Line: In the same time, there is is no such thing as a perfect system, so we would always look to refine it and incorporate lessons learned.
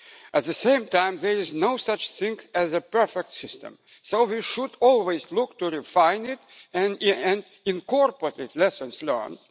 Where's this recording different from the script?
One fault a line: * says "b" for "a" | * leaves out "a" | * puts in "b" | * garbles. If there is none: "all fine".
* says "At" for "In"
* leaves out "is"
* says "should" for "would"